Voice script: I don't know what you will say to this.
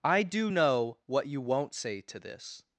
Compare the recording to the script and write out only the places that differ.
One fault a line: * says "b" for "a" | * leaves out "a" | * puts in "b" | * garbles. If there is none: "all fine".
* says "do" for "don't"
* says "won't" for "will"